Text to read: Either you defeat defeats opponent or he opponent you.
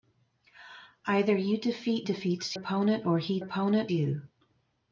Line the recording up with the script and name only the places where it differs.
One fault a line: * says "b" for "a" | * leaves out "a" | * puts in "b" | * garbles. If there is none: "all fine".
all fine